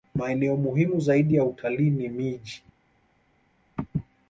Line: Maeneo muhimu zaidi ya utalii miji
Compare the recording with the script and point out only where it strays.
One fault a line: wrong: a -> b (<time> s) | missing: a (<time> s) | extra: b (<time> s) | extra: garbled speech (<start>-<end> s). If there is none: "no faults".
extra: ni (1.9 s)